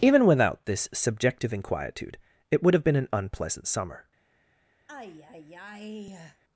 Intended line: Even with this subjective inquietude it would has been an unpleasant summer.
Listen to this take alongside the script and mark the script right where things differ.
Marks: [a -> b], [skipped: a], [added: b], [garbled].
Even [with -> without] this subjective inquietude it would [has -> have] been an unpleasant summer.